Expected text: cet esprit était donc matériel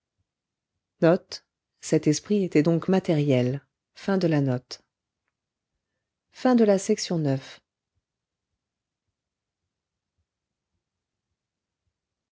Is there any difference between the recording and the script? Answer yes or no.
no